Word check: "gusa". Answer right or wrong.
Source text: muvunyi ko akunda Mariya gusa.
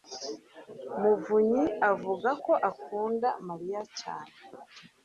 wrong